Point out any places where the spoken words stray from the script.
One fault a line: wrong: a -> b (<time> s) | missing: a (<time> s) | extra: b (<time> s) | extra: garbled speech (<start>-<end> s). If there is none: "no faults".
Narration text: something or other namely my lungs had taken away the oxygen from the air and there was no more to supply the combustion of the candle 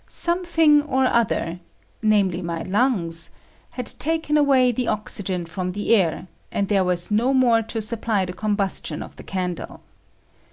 no faults